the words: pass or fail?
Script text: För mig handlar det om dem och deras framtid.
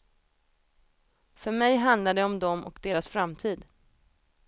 pass